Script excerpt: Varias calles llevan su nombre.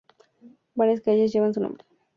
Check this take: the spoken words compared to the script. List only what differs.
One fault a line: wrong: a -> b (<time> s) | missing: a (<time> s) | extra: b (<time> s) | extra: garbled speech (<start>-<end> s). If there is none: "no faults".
no faults